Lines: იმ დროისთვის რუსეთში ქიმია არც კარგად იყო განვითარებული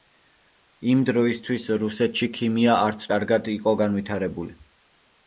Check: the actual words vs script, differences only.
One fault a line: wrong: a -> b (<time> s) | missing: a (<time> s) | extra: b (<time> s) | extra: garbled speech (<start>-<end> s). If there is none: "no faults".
no faults